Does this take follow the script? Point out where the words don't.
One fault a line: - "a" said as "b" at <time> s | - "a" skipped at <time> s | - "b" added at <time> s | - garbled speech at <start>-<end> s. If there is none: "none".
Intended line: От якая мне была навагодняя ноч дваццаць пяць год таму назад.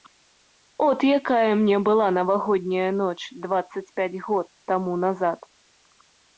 none